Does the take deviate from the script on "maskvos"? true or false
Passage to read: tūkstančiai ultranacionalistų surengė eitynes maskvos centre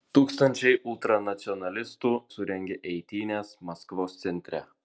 false